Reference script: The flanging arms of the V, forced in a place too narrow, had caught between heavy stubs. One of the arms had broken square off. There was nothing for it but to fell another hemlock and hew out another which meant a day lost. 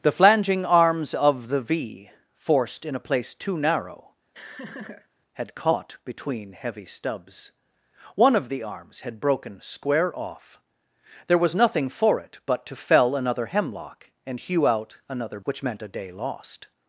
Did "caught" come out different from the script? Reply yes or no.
no